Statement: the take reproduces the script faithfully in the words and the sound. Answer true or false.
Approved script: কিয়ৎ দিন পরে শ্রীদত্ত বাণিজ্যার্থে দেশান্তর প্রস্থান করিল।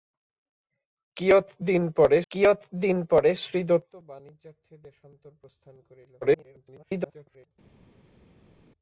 false